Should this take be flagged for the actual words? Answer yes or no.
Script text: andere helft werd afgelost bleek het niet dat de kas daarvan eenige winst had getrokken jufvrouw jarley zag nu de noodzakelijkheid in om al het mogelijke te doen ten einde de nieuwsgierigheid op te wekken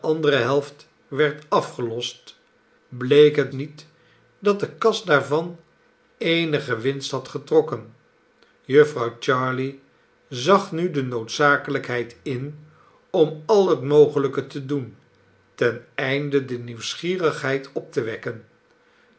no